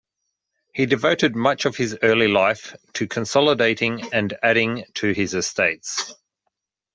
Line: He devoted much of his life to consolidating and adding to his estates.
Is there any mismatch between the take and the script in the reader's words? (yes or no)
yes